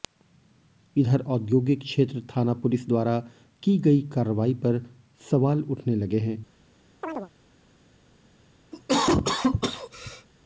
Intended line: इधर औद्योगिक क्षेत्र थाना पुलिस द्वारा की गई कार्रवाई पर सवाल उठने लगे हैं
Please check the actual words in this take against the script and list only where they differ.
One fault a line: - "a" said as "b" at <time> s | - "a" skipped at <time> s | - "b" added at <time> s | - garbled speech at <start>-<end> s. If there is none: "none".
none